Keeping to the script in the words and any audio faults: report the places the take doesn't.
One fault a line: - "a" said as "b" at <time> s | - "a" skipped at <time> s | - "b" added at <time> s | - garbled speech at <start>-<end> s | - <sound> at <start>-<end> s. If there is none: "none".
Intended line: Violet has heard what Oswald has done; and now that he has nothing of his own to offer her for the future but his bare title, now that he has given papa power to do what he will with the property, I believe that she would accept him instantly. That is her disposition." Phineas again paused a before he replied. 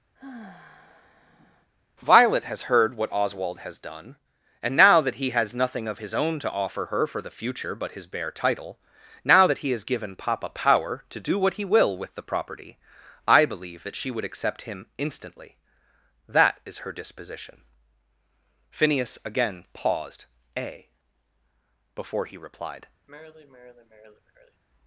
- sigh at 0.2-1.7 s
- sigh at 23.1-24.6 s